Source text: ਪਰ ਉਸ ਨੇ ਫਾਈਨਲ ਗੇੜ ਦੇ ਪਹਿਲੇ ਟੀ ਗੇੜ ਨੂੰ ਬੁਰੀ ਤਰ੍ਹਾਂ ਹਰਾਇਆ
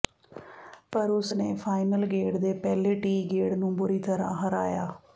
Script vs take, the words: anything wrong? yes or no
no